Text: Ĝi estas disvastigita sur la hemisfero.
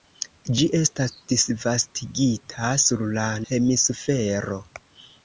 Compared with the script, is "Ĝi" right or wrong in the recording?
right